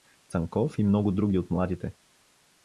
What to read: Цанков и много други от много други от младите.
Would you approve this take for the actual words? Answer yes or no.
no